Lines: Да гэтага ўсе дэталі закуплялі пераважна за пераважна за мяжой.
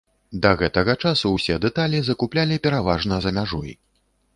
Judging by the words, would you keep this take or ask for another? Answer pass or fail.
fail